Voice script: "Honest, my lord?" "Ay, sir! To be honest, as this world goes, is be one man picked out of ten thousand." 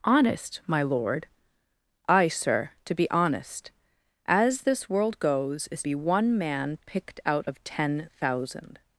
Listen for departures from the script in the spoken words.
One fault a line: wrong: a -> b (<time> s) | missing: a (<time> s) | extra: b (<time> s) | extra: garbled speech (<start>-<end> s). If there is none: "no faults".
no faults